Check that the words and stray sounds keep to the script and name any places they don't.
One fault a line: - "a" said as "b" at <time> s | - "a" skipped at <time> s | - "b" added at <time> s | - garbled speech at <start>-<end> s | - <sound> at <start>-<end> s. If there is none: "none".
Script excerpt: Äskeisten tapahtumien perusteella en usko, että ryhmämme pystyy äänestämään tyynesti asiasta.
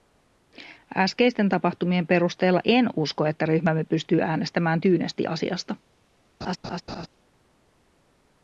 - laugh at 6.4-7.1 s